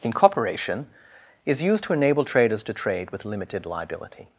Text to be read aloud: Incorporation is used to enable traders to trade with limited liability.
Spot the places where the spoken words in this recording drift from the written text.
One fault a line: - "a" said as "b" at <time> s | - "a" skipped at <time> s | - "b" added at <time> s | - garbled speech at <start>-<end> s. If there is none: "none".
none